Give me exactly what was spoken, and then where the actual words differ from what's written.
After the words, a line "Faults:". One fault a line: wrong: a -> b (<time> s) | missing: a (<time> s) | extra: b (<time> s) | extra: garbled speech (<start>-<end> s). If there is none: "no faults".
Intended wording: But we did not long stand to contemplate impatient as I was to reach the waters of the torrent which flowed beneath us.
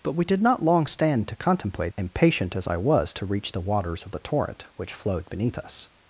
But we did not long stand to contemplate impatient as I was to reach the waters of the torrent which flowed beneath us.
Faults:
no faults